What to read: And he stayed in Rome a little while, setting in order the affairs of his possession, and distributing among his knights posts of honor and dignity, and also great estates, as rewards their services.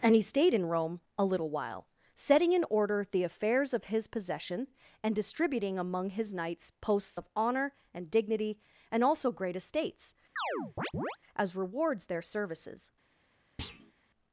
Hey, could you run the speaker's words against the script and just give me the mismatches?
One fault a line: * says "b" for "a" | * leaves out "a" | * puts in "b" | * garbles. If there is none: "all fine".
all fine